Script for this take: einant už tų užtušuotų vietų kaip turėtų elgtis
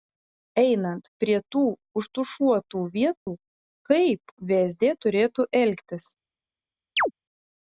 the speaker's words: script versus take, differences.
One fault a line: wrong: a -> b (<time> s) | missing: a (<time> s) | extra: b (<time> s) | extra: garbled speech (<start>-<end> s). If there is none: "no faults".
wrong: už -> prie (1.2 s)
extra: vsd (4.5 s)